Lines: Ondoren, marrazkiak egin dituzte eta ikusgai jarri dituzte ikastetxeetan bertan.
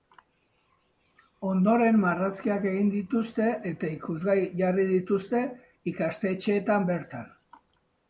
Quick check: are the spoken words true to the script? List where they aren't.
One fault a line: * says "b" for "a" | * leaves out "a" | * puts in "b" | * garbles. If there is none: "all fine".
all fine